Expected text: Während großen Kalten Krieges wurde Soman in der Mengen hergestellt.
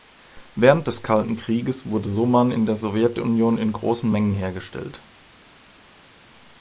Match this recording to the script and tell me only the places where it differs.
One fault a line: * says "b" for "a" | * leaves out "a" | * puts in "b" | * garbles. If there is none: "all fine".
* says "des" for "großen"
* puts in "Sowjetunion in großen"